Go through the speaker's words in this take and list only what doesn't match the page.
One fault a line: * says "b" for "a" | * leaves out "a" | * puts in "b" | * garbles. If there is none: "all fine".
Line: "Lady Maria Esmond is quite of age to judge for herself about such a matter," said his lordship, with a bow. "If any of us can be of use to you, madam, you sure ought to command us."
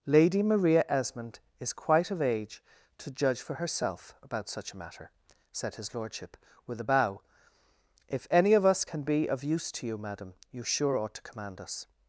all fine